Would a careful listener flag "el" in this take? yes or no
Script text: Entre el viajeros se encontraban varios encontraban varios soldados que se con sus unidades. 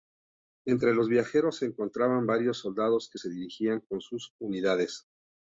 yes